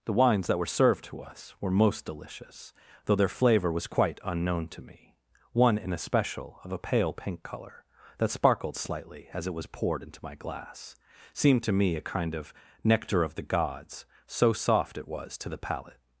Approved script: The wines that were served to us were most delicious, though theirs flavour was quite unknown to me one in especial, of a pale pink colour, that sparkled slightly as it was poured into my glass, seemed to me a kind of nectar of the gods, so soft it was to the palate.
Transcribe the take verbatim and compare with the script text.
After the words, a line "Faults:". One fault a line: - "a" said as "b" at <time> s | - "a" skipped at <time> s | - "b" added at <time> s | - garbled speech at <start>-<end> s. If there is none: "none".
The wines that were served to us were most delicious, though their flavour was quite unknown to me one in especial, of a pale pink colour, that sparkled slightly as it was poured into my glass, seemed to me a kind of nectar of the gods, so soft it was to the palate.
Faults:
- "theirs" said as "their" at 3.1 s